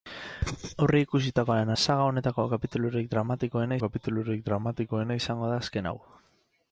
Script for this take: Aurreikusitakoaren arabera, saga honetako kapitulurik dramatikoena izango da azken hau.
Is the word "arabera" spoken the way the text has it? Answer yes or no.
no